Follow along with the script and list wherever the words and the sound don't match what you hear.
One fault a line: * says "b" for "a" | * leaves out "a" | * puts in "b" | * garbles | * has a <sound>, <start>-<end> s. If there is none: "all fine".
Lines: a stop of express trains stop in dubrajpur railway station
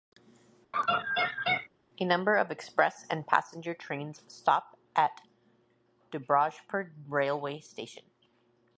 * has a laugh, 0.7-1.7 s
* says "number" for "stop"
* puts in "and passenger"
* says "at" for "in"